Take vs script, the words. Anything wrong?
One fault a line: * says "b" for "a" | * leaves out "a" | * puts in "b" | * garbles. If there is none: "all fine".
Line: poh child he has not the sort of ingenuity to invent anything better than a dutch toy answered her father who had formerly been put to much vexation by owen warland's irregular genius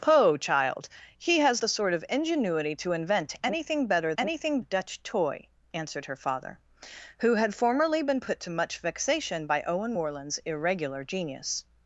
* leaves out "not"
* says "anything" for "than"